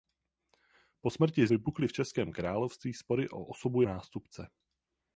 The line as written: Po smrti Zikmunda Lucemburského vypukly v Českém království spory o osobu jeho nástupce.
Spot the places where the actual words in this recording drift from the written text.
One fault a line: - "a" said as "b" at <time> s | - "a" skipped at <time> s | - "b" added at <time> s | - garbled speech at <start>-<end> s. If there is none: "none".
- "Zikmunda Lucemburského" skipped at 1.5 s
- "jeho" skipped at 3.8 s